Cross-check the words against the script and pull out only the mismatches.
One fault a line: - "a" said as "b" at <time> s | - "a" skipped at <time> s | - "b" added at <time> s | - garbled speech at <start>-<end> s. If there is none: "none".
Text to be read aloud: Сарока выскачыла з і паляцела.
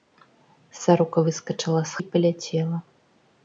none